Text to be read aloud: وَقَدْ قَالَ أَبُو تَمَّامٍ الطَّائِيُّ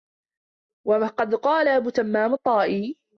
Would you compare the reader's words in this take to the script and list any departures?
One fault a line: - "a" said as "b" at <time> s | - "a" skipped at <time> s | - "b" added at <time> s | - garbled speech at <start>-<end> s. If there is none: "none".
none